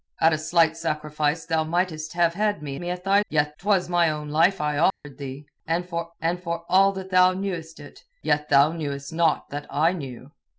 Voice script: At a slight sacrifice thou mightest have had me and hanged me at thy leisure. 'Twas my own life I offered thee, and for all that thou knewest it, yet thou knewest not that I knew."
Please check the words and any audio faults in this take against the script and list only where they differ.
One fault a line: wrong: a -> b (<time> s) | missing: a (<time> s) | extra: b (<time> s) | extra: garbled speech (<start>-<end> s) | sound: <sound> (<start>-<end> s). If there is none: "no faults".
missing: and hanged (2.8 s)
wrong: leisure -> yet (3.3 s)
sound: dropout (4.9-5.0 s)
extra: and for (6.2 s)